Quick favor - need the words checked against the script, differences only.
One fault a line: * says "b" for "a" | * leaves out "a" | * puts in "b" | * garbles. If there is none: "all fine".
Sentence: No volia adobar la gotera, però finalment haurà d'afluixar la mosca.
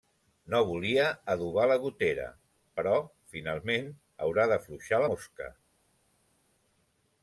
* leaves out "la"